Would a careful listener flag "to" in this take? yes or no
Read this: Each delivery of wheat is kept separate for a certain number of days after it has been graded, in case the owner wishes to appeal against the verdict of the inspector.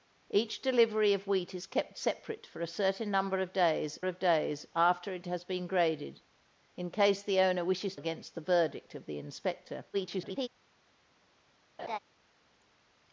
yes